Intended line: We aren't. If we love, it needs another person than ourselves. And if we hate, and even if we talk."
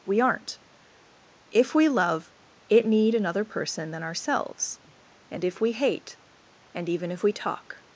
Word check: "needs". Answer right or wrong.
wrong